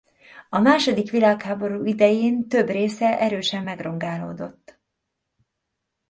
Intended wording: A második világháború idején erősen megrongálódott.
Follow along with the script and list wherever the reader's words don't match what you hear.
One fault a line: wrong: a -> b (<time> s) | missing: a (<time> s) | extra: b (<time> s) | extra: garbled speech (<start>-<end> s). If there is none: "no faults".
extra: több része (2.5 s)